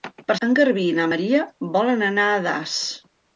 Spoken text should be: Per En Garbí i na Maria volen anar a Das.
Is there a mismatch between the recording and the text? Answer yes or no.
no